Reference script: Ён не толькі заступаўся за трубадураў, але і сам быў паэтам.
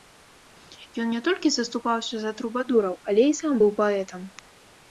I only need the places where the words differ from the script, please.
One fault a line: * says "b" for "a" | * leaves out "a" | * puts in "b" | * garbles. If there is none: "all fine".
all fine